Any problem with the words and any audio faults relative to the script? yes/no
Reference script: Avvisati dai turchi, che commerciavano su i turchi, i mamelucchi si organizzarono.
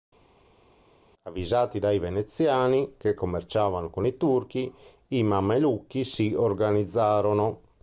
yes